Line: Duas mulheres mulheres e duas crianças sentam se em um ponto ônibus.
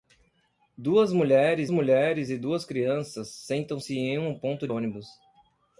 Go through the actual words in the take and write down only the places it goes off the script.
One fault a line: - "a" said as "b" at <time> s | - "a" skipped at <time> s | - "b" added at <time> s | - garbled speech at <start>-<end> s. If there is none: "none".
none